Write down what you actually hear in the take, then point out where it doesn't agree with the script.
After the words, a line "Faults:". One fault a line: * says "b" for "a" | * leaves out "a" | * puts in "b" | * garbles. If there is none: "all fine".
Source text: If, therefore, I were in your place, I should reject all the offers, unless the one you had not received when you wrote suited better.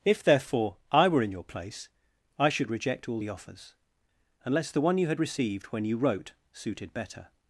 If, therefore, I were in your place, I should reject all the offers, unless the one you had received when you wrote suited better.
Faults:
* leaves out "not"